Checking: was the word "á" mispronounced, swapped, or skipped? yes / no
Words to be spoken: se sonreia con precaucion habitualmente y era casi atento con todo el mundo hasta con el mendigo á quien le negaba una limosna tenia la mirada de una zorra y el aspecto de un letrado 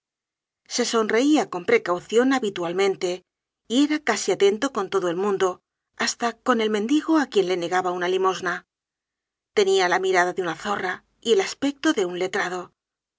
no